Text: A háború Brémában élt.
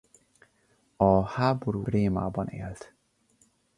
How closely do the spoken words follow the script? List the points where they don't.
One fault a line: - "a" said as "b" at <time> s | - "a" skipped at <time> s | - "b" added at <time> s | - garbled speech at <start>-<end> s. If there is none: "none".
none